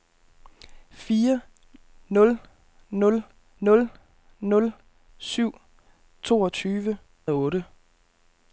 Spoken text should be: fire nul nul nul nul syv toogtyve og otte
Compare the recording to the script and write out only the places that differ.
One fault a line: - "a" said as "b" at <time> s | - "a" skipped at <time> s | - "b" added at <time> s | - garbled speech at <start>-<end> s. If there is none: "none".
none